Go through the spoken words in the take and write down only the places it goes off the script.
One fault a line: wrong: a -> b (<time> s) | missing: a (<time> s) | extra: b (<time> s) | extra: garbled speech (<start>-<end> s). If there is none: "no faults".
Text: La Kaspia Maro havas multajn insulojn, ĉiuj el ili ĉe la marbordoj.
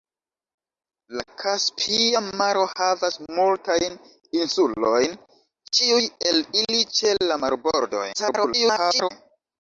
extra: garbled speech (8.1-9.1 s)